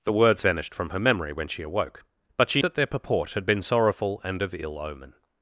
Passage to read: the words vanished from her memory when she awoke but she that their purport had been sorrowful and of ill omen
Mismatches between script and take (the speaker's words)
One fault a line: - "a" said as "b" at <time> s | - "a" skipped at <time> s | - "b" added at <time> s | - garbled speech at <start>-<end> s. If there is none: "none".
none